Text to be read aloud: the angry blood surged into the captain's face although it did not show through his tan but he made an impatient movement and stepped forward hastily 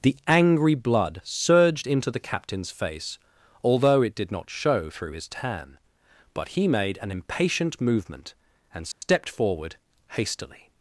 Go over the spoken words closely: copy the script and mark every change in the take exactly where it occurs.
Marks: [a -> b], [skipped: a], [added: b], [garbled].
the angry blood surged into the captain's face although it did not show through his tan but he made an impatient movement and stepped forward hastily